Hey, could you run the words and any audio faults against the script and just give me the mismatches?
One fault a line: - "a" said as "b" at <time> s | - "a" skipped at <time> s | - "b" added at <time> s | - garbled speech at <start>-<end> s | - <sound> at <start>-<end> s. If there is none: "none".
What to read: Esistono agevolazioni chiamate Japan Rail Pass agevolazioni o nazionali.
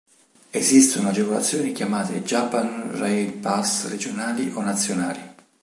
- "agevolazioni" said as "regionali" at 3.9 s